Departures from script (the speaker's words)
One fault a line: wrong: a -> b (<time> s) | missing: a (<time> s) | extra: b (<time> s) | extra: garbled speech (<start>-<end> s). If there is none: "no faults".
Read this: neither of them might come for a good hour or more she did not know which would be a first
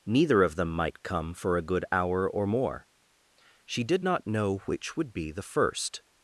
wrong: a -> the (5.3 s)